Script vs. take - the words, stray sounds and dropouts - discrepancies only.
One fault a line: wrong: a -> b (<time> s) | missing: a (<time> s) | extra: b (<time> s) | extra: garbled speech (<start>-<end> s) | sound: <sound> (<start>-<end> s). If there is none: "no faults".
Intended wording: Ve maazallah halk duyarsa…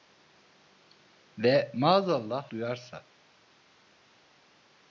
missing: halk (2.5 s)